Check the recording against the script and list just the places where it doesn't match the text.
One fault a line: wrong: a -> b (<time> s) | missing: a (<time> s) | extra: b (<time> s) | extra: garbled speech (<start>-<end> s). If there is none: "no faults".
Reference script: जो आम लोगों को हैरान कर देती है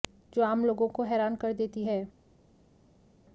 no faults